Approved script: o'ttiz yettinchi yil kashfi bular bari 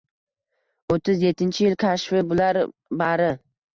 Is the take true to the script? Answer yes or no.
yes